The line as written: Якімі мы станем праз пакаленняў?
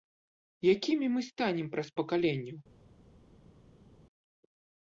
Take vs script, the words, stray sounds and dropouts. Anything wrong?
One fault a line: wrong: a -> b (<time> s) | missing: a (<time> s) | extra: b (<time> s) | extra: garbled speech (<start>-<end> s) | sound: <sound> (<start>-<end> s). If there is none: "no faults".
no faults